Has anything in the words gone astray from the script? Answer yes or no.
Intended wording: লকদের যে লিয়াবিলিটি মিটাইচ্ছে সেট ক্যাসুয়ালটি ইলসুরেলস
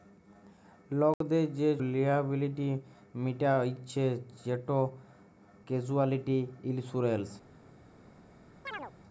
no